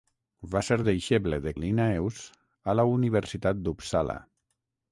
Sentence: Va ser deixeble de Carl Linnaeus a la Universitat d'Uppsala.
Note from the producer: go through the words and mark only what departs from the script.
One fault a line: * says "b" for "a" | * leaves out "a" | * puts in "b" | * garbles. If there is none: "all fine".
* leaves out "Carl"